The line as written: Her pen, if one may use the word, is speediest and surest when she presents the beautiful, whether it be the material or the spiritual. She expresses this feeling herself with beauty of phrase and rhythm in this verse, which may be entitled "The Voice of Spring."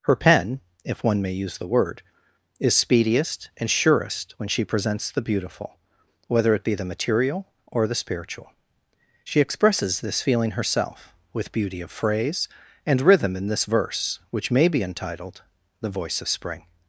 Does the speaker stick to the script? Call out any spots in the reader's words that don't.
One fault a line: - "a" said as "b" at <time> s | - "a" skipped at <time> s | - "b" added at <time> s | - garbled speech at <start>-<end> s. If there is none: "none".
none